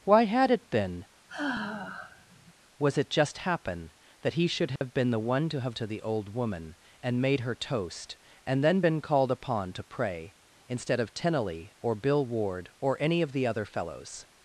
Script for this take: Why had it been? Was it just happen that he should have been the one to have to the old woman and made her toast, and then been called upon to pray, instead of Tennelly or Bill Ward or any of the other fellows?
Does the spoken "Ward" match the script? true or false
true